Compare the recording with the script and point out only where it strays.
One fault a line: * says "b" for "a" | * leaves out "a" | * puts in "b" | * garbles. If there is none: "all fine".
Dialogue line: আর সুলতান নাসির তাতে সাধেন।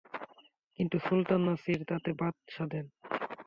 * says "কিন্তু" for "আর"
* puts in "বাদ"